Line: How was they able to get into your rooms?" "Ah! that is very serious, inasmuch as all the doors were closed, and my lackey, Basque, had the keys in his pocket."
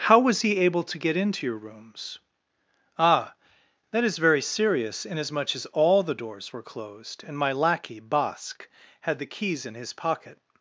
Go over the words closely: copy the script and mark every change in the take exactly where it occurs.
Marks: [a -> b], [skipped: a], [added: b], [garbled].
How was [they -> he] able to get into your rooms?" "Ah! that is very serious, inasmuch as all the doors were closed, and my lackey, Basque, had the keys in his pocket."